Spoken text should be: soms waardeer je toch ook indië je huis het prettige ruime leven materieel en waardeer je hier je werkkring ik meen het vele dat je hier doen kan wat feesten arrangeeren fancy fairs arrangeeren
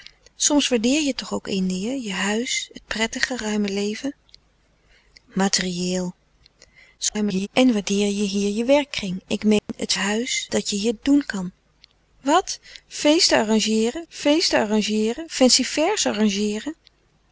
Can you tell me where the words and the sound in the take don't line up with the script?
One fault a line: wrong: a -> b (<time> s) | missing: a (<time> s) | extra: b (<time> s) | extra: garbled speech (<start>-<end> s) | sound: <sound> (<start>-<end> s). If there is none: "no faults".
extra: garbled speech (7.0-7.5 s)
sound: dropout (9.6-9.7 s)
wrong: vele -> huis (9.9 s)
extra: feesten arrangeeren (14.1 s)